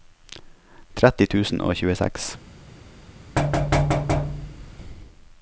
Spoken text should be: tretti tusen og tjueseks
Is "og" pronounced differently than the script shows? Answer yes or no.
no